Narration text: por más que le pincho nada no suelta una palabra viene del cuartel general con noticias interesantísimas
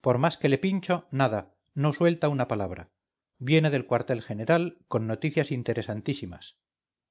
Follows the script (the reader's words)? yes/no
yes